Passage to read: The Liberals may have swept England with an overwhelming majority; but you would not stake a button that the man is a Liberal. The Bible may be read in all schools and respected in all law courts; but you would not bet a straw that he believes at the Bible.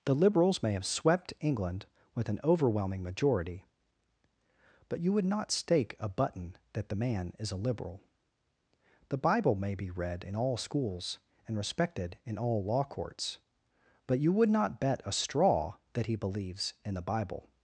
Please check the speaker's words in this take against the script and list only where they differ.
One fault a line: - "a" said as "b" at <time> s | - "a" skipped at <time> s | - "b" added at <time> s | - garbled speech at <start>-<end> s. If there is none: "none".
- "at" said as "in" at 16.8 s